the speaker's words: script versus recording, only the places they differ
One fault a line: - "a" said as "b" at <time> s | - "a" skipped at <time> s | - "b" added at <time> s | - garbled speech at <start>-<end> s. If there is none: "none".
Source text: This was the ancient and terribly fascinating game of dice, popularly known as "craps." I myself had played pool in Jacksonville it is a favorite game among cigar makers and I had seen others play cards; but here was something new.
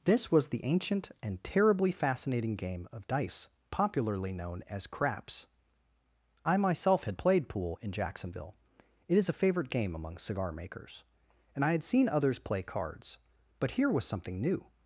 none